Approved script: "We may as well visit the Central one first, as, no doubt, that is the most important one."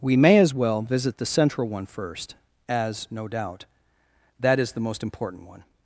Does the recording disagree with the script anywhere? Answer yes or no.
no